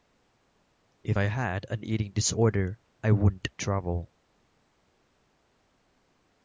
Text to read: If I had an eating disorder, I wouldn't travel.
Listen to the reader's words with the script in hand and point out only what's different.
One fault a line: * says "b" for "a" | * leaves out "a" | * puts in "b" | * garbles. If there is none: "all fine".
all fine